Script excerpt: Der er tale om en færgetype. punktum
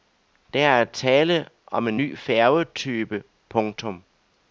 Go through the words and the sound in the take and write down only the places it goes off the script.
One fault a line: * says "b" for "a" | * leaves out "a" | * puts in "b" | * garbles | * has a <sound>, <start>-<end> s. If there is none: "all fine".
* puts in "ny"